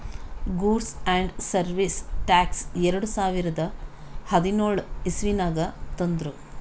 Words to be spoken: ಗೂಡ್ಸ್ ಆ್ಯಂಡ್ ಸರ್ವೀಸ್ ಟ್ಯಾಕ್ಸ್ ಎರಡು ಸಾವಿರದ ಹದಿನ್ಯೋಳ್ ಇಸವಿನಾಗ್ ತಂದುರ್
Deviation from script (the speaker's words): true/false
false